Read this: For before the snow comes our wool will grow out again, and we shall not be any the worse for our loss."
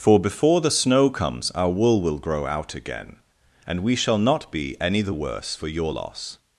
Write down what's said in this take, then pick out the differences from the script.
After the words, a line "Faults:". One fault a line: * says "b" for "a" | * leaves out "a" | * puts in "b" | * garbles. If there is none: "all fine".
For before the snow comes our wool will grow out again, and we shall not be any the worse for your loss."
Faults:
* says "your" for "our"